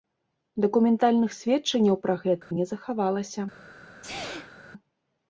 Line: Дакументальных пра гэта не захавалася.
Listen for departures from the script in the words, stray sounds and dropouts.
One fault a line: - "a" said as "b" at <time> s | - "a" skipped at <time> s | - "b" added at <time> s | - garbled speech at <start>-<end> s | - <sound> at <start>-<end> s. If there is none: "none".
- "сведчанняў" added at 1.4 s
- dropout at 2.4-2.5 s
- sneeze at 4.0-4.6 s